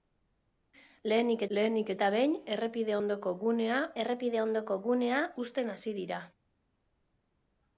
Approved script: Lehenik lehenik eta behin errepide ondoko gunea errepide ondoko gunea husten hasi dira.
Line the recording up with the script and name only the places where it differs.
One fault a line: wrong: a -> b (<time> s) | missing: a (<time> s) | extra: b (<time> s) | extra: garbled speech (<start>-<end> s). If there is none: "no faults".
no faults